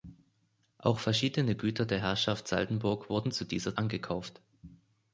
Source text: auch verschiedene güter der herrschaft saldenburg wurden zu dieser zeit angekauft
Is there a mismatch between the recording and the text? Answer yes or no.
yes